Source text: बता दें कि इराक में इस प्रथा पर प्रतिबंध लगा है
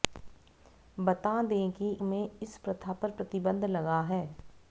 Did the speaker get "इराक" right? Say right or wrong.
wrong